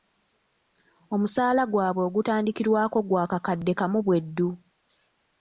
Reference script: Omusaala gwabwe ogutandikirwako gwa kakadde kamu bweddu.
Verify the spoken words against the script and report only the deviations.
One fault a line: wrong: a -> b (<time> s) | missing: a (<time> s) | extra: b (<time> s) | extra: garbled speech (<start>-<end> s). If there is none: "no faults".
no faults